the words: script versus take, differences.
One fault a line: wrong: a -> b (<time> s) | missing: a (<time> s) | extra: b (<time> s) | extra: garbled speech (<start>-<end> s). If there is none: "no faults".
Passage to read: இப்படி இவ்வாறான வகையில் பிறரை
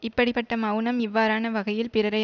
extra: பட்ட மெளனம் (0.3 s)